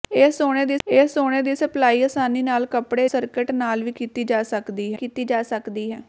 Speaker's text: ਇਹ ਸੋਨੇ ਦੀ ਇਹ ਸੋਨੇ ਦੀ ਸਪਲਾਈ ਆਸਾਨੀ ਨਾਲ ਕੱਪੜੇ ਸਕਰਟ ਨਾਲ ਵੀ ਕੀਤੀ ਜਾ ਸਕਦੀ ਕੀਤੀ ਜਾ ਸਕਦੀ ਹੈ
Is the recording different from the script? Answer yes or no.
no